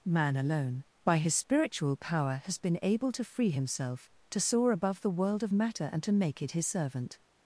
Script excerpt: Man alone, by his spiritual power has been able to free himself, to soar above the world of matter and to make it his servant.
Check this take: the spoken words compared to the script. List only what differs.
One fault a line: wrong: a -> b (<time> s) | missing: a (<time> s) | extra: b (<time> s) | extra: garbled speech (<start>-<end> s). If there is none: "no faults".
no faults